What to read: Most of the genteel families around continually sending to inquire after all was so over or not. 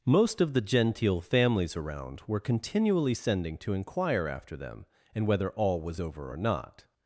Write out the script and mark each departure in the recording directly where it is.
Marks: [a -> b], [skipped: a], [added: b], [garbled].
Most of the genteel families around [added: were] continually sending to inquire after [added: them and whether] all was [skipped: so] over or not.